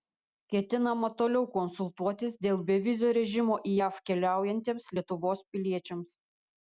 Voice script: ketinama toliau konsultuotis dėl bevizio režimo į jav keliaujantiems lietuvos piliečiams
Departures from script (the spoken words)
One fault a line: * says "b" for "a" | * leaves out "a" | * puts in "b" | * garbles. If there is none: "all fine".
all fine